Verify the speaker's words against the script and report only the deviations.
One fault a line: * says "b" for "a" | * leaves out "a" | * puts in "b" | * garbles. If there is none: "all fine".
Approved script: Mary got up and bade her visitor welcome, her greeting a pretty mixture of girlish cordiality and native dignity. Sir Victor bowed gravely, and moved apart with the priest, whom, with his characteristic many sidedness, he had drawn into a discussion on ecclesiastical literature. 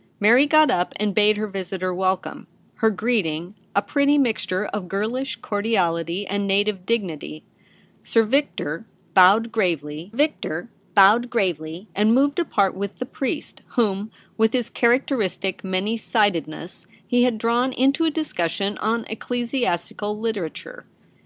* puts in "Victor bowed gravely"